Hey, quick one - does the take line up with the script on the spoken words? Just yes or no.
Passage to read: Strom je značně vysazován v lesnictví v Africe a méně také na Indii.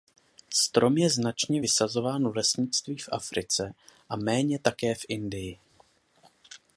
no